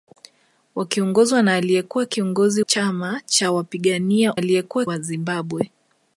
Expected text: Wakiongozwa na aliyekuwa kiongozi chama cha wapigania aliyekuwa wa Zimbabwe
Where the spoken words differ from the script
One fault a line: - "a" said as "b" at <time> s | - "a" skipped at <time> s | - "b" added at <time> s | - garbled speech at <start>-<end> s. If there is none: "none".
none